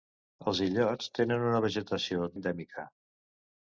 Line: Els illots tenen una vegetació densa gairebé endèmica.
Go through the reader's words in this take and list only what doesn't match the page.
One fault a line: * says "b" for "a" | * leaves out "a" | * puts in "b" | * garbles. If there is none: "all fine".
* leaves out "densa gairebé"